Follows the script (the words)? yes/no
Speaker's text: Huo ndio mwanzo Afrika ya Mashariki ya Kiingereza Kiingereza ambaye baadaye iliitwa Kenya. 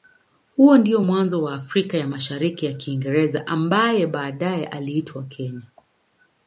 no